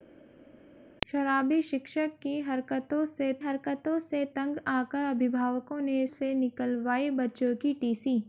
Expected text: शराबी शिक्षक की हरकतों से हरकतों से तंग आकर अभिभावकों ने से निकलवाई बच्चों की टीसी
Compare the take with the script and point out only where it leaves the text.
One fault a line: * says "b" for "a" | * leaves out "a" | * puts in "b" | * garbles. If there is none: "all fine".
all fine